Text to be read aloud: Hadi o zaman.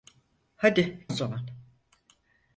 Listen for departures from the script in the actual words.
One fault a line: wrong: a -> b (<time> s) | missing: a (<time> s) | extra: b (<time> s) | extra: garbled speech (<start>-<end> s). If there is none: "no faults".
no faults